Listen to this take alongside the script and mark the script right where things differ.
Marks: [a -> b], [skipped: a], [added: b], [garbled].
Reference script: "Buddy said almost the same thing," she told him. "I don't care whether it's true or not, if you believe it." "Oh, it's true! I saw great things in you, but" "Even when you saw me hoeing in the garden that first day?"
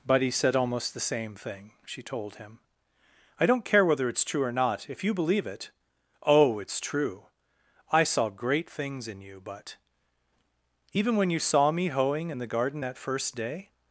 "Buddy said almost the same thing," she told him. "I don't care whether it's true or not, if you believe it." "Oh, it's true! I saw great things in you, but" "Even when you saw me hoeing in the garden that first day?"